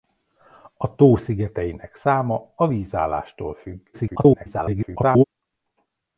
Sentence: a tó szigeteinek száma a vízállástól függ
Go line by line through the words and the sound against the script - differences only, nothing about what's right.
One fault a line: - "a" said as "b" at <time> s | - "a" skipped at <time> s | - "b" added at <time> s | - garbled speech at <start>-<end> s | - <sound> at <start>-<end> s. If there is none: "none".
- garbled speech at 3.9-5.2 s